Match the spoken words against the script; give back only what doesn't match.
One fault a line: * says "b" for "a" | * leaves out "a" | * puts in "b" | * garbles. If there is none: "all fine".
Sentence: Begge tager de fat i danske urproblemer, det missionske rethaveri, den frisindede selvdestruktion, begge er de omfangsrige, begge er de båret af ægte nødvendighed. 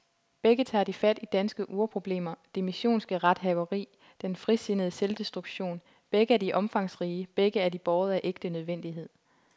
all fine